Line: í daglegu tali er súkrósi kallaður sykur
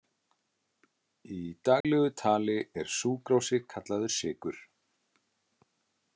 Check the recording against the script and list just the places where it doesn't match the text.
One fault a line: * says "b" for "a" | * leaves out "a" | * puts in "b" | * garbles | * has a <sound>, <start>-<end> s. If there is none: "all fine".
* has a dropout, 1.8-1.8 s